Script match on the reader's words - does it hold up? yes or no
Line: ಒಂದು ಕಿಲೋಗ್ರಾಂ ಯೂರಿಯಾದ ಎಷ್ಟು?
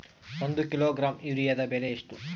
no